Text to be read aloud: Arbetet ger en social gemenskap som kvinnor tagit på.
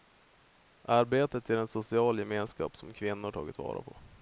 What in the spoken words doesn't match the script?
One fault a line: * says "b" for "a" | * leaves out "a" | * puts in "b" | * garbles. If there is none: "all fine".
* puts in "vara"